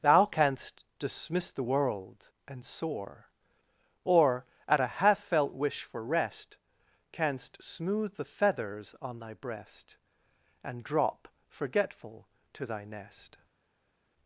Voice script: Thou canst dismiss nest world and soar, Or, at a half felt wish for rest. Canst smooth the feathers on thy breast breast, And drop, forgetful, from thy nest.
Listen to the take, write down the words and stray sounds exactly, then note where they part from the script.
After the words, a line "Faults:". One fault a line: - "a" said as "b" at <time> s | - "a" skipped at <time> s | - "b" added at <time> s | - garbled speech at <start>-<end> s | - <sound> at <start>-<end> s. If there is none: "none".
Thou canst dismiss the world and soar, Or, at a half felt wish for rest. Canst smooth the feathers on thy breast, And drop, forgetful, to thy nest.
Faults:
- "nest" said as "the" at 1.5 s
- "breast" skipped at 10.0 s
- "from" said as "to" at 12.5 s